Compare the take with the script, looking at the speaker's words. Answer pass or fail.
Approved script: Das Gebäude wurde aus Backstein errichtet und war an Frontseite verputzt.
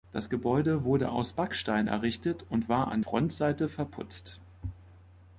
pass